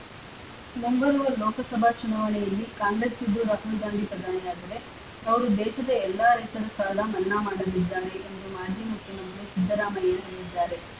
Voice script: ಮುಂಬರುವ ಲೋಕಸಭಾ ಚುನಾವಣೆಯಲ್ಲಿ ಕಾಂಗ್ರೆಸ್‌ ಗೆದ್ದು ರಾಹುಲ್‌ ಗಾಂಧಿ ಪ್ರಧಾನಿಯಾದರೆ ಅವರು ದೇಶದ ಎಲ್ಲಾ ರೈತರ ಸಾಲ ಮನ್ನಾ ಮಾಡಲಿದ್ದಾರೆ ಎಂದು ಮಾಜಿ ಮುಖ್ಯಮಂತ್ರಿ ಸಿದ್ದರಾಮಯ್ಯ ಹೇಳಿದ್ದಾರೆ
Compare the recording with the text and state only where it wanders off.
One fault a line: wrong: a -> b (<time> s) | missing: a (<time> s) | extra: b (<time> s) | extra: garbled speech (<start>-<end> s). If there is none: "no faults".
no faults